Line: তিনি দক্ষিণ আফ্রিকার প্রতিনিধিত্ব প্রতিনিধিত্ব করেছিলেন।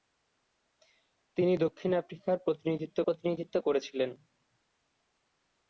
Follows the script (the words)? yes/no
yes